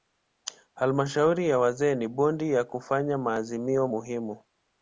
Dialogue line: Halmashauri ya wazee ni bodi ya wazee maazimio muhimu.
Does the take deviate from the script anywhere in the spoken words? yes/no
yes